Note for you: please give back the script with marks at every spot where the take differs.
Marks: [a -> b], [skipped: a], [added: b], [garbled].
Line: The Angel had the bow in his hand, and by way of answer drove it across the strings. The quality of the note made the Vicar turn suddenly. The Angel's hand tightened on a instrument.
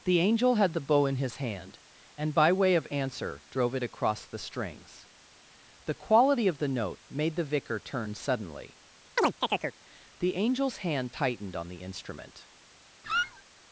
The Angel had the bow in his hand, and by way of answer drove it across the strings. The quality of the note made the Vicar turn suddenly. The Angel's hand tightened on [a -> the] instrument.